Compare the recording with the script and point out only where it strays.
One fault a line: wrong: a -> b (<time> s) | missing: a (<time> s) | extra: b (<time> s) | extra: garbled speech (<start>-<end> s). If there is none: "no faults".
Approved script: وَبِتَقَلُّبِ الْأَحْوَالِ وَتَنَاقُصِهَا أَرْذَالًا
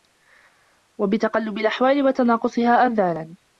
no faults